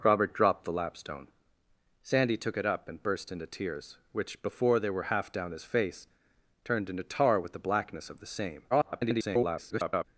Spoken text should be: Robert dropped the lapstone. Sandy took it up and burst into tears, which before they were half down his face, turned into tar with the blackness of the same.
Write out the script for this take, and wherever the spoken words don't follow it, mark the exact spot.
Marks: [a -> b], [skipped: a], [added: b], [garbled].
Robert dropped the lapstone. Sandy took it up and burst into tears, which before they were half down his face, turned into tar with the blackness of the same. [garbled]